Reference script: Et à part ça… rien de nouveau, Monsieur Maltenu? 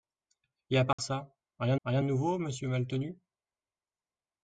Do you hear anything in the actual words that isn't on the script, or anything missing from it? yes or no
yes